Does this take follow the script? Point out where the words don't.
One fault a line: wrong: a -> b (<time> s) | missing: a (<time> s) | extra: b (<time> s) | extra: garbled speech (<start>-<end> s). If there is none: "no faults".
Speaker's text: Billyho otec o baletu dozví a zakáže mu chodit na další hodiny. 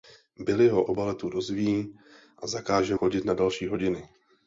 missing: otec (0.8 s)
missing: mu (3.0 s)